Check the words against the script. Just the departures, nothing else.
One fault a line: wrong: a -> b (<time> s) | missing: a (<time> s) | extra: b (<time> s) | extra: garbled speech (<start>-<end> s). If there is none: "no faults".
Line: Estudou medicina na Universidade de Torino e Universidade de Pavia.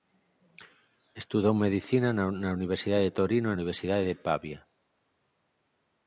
no faults